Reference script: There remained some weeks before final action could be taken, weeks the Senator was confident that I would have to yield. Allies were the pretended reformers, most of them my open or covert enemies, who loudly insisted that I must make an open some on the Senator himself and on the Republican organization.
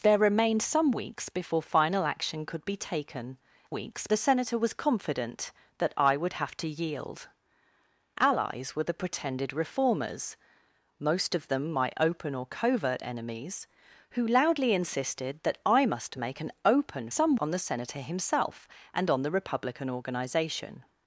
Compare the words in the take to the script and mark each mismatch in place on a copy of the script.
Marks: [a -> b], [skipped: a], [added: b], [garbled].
There remained some weeks before final action could be taken, weeks the Senator was confident that I would have to yield. Allies were the pretended reformers, most of them my open or covert enemies, who loudly insisted that I must make an open some on the Senator himself and on the Republican organization.